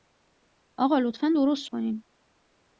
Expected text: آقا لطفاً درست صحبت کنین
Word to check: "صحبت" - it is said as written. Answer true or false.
false